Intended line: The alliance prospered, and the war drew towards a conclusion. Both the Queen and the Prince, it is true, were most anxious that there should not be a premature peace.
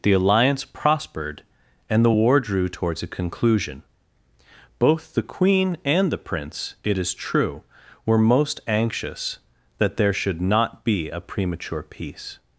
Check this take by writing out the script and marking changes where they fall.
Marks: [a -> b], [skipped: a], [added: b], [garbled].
The alliance prospered, and the war drew towards a conclusion. Both the Queen and the Prince, it is true, were most anxious that there should not be a premature peace.